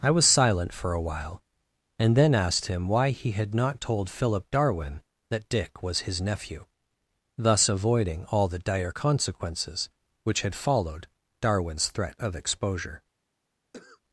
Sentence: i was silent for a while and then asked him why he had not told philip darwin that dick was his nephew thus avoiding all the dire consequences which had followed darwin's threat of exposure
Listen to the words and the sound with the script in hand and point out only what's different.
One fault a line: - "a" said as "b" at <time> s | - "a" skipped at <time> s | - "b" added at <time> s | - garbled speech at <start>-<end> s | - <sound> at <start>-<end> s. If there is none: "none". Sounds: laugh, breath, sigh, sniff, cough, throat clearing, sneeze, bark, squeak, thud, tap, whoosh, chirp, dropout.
- cough at 13.7-14.0 s